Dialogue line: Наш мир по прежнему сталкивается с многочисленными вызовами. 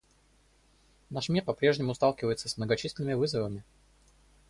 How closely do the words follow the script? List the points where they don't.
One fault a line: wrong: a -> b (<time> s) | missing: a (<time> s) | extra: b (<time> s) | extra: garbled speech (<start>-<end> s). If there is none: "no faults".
no faults